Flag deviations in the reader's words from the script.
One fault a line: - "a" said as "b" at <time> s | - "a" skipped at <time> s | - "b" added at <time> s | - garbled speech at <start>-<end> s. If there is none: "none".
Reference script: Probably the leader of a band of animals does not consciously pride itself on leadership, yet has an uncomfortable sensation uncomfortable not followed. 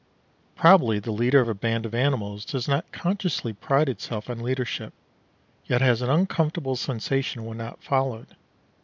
- "uncomfortable" said as "when" at 7.4 s